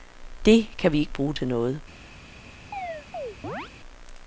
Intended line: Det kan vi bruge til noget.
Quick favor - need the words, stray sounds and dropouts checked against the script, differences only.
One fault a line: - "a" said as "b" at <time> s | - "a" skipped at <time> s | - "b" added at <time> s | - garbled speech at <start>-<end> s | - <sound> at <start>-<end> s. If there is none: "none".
- "ikke" added at 1.0 s
- chirp at 2.7-3.7 s